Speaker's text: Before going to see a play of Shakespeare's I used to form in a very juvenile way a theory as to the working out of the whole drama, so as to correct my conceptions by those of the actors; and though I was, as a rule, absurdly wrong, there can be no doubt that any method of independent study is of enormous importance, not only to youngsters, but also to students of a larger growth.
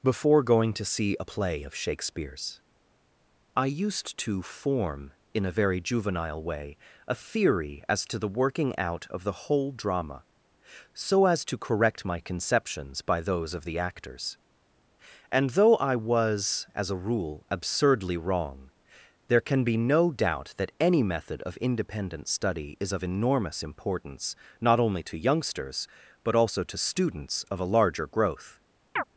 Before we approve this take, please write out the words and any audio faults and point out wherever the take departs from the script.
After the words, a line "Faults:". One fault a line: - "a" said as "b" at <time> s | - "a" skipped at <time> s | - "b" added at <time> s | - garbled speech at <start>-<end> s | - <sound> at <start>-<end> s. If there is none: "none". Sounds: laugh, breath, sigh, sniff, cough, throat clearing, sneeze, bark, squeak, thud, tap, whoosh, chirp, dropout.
Before going to see a play of Shakespeare's I used to form in a very juvenile way a theory as to the working out of the whole drama, so as to correct my conceptions by those of the actors; and though I was, as a rule, absurdly wrong, there can be no doubt that any method of independent study is of enormous importance, not only to youngsters, but also to students of a larger growth.
Faults:
- chirp at 29.0-29.0 s